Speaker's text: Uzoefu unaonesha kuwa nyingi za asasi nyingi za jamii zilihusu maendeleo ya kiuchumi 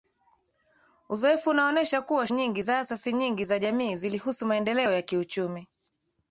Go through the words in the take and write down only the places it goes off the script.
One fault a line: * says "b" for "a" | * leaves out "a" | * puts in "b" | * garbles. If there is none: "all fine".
all fine